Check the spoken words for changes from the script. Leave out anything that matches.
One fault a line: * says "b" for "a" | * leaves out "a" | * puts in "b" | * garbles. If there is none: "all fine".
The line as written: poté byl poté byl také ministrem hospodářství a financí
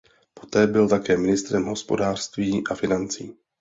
* leaves out "poté byl"